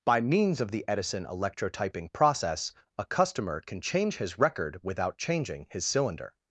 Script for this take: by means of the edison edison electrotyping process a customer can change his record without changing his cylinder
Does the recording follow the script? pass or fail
fail